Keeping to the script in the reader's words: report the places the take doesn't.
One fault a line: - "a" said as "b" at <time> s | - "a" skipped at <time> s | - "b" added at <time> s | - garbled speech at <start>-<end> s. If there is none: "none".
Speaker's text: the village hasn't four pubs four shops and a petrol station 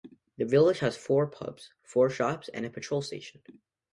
- "hasn't" said as "has" at 0.8 s